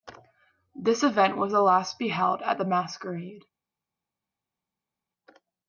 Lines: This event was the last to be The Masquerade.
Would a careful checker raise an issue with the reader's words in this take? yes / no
yes